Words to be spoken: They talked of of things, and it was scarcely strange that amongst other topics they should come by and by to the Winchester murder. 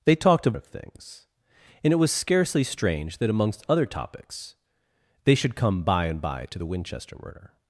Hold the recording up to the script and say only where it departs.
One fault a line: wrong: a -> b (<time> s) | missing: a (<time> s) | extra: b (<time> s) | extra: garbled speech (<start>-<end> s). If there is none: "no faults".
no faults